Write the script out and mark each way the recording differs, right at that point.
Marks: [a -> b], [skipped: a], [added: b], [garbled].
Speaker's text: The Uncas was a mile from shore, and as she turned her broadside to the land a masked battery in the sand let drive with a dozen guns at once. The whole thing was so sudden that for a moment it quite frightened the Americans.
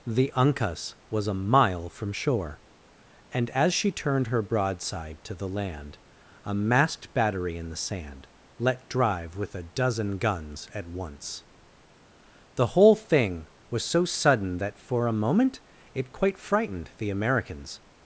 The Uncas was a mile from shore, and as she turned her broadside to the land a masked battery in the sand let drive with a dozen guns at once. The whole thing was so sudden that for a moment it quite frightened the Americans.